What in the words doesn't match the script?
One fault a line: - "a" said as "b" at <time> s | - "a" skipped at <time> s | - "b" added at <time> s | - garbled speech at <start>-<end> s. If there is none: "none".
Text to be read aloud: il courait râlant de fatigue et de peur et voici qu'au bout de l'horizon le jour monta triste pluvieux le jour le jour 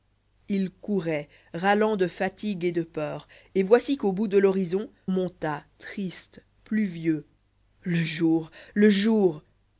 - "le jour" skipped at 4.9 s